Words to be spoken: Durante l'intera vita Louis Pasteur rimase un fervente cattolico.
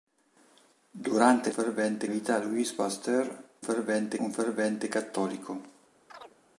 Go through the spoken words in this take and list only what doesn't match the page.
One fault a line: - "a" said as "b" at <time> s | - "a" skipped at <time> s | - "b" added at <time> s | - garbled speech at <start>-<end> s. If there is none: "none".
- "l'intera" said as "fervente" at 1.5 s
- "rimase" said as "fervente" at 3.6 s